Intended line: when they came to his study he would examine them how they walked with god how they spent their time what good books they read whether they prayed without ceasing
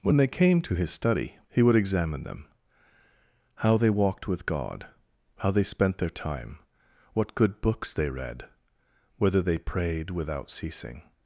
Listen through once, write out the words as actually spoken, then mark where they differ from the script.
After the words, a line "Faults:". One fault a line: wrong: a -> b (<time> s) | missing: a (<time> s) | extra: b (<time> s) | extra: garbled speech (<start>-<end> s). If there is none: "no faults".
when they came to his study he would examine them how they walked with god how they spent their time what good books they read whether they prayed without ceasing
Faults:
no faults